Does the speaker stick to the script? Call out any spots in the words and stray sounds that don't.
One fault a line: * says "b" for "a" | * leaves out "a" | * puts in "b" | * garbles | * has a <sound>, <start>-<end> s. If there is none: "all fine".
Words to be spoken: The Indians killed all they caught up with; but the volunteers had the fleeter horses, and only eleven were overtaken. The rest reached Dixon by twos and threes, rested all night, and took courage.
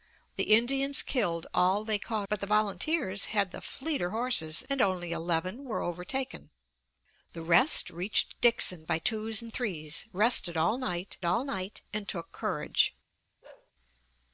* leaves out "up with"
* puts in "all night"
* has a bark, 13.4-13.7 s